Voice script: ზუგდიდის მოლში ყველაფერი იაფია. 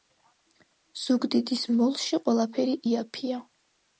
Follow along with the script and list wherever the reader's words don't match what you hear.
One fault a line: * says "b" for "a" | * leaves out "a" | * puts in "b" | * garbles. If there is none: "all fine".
all fine